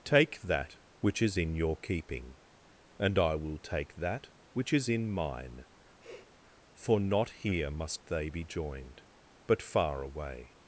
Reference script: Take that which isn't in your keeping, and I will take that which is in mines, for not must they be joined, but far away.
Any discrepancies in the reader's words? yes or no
yes